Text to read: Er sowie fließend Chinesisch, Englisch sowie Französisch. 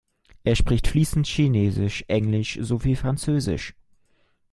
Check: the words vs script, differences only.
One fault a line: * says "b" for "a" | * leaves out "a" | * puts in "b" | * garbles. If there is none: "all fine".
* says "spricht" for "sowie"